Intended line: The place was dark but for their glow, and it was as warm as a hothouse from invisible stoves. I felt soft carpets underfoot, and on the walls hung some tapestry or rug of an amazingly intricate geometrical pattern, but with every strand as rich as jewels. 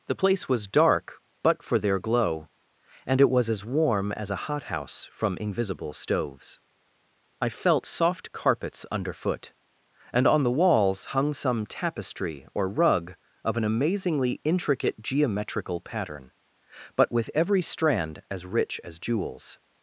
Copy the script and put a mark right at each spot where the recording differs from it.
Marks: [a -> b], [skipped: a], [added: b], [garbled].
The place was dark but for their glow, and it was as warm as a hothouse from invisible stoves. I felt soft carpets underfoot, and on the walls hung some tapestry or rug of an amazingly intricate geometrical pattern, but with every strand as rich as jewels.